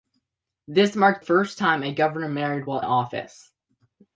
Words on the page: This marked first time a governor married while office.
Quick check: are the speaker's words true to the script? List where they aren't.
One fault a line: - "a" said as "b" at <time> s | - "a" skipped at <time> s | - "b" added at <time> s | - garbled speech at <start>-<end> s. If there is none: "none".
none